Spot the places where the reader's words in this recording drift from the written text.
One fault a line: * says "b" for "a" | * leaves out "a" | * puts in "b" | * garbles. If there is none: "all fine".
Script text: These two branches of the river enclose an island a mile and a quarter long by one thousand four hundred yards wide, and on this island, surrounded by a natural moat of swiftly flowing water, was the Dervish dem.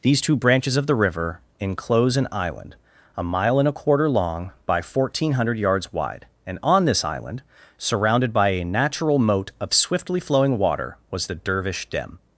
all fine